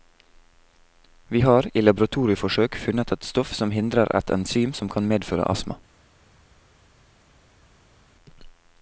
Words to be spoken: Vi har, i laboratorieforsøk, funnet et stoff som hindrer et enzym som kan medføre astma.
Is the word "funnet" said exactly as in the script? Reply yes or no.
yes